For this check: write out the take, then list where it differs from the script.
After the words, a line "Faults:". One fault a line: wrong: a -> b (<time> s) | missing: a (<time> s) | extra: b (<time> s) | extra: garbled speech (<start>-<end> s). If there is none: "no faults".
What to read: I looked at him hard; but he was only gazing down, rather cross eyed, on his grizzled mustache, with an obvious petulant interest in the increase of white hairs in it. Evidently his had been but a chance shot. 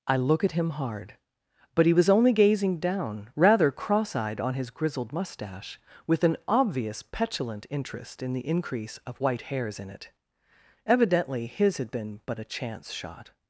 I look at him hard; but he was only gazing down, rather cross eyed, on his grizzled mustache, with an obvious petulant interest in the increase of white hairs in it. Evidently his had been but a chance shot.
Faults:
wrong: looked -> look (0.2 s)